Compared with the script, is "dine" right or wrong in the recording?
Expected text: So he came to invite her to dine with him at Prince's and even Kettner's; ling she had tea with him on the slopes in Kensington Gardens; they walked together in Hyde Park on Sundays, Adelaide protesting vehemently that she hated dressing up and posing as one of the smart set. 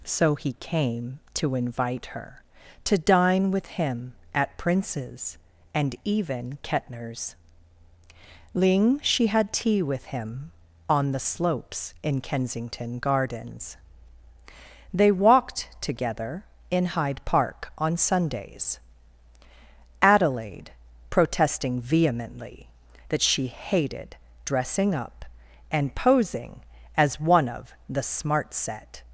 right